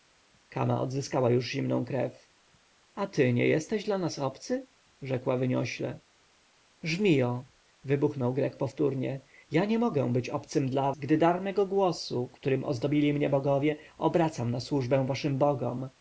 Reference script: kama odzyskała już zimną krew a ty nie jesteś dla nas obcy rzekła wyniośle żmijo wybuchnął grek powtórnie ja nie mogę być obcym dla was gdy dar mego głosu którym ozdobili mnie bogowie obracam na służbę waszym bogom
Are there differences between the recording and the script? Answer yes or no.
yes